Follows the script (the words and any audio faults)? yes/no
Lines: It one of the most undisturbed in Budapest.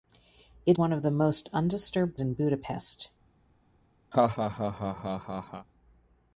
no